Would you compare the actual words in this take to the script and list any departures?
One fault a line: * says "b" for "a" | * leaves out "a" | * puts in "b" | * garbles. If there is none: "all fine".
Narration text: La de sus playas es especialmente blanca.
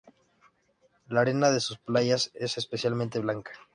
* puts in "arena"